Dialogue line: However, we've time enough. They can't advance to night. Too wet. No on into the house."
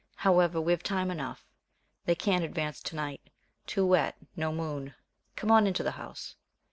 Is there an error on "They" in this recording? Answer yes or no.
no